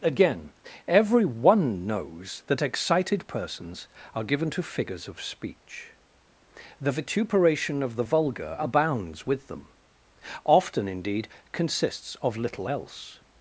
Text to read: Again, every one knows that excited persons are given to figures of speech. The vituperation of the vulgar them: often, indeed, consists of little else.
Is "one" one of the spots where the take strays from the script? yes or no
no